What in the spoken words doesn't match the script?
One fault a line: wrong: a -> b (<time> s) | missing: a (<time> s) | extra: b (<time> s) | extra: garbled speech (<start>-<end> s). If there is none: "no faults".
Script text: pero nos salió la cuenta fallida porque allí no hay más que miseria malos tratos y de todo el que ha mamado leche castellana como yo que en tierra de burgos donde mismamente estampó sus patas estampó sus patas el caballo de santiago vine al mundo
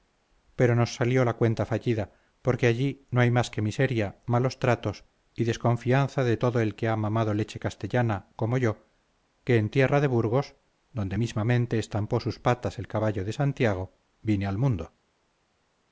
extra: desconfianza (5.4 s)
missing: estampó sus patas (12.8 s)